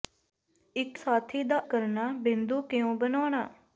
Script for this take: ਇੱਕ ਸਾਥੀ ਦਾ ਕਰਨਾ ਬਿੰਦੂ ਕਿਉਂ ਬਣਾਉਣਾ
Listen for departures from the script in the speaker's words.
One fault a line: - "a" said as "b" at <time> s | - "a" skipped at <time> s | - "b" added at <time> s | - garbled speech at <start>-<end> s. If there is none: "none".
none